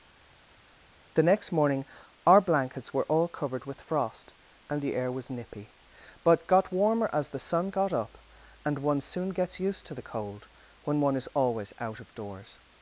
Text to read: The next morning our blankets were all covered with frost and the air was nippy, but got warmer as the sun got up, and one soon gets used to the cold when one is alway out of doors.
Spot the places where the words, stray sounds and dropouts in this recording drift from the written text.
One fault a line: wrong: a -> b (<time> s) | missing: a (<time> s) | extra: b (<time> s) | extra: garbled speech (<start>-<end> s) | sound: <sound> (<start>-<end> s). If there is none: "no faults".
wrong: alway -> always (11.3 s)